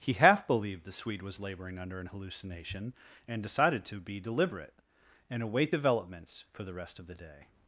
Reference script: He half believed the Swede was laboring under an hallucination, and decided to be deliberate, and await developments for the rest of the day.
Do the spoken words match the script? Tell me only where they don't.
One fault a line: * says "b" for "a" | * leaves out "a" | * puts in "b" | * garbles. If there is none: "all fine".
all fine